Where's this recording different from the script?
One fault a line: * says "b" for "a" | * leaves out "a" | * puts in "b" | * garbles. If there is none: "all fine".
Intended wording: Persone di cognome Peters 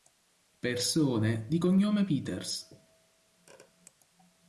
all fine